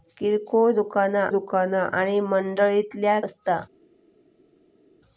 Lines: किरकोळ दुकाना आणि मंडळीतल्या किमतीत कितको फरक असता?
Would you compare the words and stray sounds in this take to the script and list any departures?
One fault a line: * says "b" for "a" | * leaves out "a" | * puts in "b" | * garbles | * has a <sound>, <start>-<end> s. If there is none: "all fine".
* puts in "दुकाना"
* leaves out "किमतीत कितको फरक"